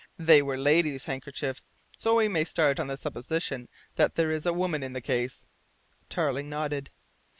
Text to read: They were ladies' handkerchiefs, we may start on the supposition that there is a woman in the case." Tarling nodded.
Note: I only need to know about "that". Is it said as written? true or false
true